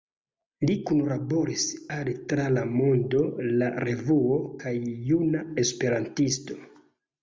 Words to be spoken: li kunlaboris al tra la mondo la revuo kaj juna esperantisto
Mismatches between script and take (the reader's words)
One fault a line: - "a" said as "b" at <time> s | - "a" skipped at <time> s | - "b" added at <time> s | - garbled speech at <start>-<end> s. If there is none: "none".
none